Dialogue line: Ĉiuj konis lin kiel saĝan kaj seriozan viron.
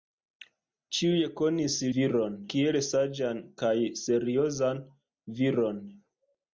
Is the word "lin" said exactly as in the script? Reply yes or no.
no